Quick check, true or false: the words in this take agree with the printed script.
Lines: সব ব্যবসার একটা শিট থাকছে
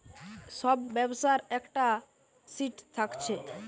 true